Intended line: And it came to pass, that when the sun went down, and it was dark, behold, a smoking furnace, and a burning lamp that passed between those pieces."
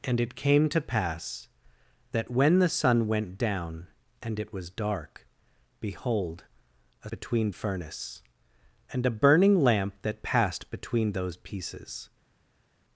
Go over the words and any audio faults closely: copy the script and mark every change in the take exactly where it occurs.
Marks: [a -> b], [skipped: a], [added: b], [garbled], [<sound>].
And it came to pass, that when the sun went down, and it was dark, behold, a [smoking -> between] furnace, and a burning lamp that passed between those pieces."